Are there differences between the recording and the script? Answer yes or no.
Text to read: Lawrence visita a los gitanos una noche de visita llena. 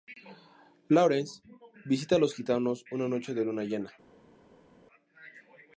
yes